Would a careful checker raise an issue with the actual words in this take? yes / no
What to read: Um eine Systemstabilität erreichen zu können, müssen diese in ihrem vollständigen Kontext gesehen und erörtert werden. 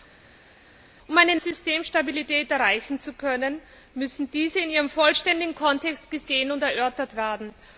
no